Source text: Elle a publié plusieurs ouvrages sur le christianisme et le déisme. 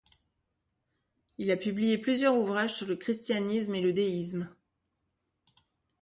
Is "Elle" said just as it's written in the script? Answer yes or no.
no